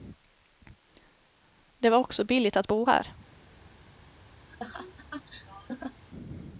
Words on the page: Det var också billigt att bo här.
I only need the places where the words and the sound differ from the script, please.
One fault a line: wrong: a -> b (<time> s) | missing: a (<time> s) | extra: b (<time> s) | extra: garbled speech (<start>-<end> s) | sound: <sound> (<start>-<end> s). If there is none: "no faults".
sound: laugh (4.5-6.0 s)